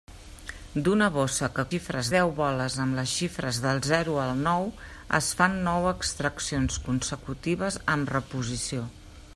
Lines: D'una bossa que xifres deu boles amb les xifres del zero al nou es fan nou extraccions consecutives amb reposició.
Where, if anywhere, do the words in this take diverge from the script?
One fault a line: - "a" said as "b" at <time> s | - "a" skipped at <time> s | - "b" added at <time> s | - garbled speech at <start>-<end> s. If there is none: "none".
none